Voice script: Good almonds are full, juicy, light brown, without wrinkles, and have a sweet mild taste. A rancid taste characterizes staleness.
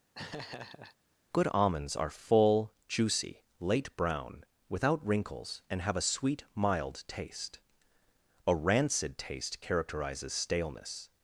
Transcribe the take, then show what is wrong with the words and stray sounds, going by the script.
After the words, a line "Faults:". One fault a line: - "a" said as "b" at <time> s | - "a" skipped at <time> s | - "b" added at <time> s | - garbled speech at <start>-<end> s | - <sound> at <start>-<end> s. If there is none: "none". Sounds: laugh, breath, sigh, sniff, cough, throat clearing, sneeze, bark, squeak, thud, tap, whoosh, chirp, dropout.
Good almonds are full, juicy, late brown, without wrinkles, and have a sweet mild taste. A rancid taste characterizes staleness.
Faults:
- laugh at 0.1-1.0 s
- "light" said as "late" at 3.6 s